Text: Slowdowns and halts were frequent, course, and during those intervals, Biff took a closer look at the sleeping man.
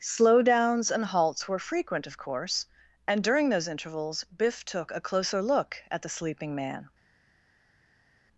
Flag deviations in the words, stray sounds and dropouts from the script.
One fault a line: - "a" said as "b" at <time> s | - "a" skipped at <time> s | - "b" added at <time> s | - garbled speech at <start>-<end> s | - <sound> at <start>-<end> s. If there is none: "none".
- "of" added at 2.1 s